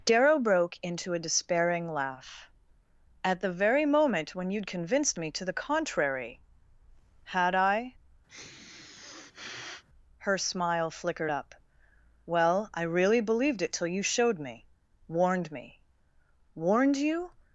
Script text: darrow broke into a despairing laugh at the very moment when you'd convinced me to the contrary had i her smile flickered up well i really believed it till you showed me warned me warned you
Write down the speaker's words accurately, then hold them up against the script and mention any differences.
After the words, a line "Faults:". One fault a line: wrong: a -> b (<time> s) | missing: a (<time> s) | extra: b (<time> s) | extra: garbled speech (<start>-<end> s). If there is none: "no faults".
darrow broke into a despairing laugh at the very moment when you'd convinced me to the contrary had i her smile flickered up well i really believed it till you showed me warned me warned you
Faults:
no faults